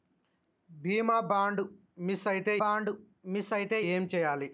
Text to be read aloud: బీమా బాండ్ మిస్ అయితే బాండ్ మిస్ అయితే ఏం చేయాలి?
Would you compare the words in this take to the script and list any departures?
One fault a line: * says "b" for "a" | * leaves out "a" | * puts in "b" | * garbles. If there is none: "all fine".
all fine